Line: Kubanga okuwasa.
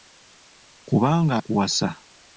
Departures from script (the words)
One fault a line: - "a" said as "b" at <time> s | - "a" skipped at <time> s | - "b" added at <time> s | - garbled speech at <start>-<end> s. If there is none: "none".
none